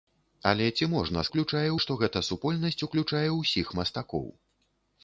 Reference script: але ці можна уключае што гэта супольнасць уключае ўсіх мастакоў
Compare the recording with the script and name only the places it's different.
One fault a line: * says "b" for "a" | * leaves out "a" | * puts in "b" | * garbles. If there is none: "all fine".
all fine